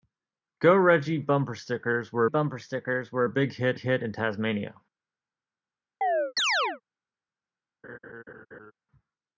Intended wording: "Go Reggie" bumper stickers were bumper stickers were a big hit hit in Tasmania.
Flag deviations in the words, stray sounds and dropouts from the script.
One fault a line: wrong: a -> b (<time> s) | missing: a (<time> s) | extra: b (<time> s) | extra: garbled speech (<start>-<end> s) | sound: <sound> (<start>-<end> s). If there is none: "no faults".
sound: chirp (6.0-6.8 s)
sound: laugh (7.8-8.7 s)